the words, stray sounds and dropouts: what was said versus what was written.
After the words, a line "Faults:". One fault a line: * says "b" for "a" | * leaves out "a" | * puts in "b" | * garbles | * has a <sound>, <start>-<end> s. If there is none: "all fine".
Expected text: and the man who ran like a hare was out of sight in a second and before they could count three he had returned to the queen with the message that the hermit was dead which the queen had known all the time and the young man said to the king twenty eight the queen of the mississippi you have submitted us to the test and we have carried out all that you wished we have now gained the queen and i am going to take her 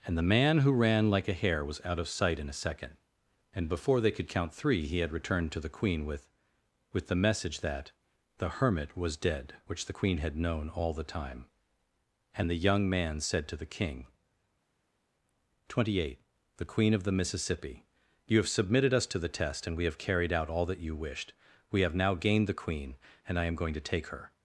and the man who ran like a hare was out of sight in a second and before they could count three he had returned to the queen with with the message that the hermit was dead which the queen had known all the time and the young man said to the king twenty eight the queen of the mississippi you have submitted us to the test and we have carried out all that you wished we have now gained the queen and i am going to take her
Faults:
* puts in "with"